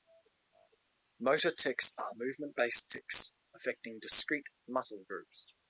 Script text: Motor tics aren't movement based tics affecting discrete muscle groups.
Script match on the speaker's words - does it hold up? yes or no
no